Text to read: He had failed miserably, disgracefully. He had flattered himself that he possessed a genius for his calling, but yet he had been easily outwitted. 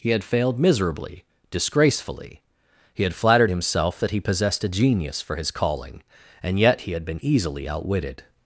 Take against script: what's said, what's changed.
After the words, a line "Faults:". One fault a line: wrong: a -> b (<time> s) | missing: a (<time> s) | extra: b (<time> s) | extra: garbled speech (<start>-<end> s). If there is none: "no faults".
He had failed miserably, disgracefully. He had flattered himself that he possessed a genius for his calling, and yet he had been easily outwitted.
Faults:
wrong: but -> and (6.4 s)